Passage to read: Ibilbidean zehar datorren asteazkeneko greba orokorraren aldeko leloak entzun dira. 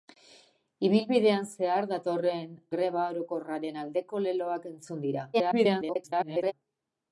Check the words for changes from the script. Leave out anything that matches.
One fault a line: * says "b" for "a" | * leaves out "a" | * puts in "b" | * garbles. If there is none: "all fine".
* leaves out "asteazkeneko"
* garbles